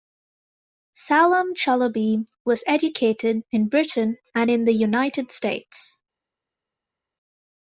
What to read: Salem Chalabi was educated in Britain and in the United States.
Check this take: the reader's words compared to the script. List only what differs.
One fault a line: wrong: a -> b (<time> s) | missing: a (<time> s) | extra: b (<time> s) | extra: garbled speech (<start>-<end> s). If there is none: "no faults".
no faults